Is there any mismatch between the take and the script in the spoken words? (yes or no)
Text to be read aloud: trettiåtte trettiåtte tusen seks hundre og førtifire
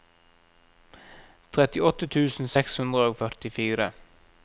yes